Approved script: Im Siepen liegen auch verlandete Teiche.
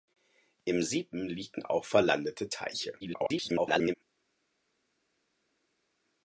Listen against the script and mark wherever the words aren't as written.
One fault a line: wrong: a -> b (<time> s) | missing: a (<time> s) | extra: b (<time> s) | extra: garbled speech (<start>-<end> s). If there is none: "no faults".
extra: garbled speech (3.0-3.9 s)